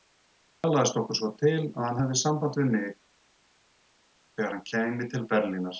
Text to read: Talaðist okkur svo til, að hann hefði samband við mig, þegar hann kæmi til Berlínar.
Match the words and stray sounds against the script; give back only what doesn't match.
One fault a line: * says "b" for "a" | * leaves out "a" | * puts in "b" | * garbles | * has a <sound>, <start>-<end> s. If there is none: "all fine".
all fine